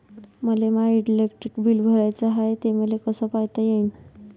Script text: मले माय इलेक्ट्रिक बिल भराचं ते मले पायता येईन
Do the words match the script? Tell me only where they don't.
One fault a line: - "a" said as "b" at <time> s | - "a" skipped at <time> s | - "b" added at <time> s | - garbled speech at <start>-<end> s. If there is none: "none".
- "हाय" added at 2.3 s
- "कस" added at 3.1 s